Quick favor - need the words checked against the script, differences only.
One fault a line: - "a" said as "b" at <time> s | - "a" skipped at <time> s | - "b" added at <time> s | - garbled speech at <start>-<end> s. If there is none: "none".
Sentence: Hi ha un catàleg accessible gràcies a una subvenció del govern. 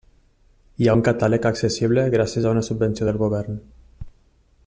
none